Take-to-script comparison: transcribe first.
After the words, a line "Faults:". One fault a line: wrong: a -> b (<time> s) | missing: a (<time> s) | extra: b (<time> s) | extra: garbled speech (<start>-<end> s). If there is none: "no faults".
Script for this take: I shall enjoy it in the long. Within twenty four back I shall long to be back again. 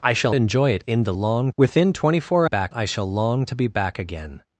I shall enjoy it in the long. Within twenty four back I shall long to be back again.
Faults:
no faults